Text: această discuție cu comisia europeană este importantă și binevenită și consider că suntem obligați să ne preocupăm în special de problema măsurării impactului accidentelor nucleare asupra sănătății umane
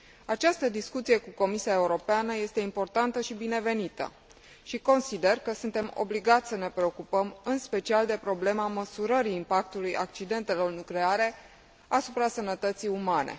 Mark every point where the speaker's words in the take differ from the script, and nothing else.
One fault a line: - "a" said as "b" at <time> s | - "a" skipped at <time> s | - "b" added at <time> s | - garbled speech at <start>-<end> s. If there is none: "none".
none